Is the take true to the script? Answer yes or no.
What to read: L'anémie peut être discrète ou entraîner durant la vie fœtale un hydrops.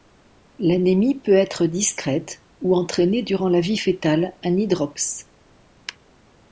yes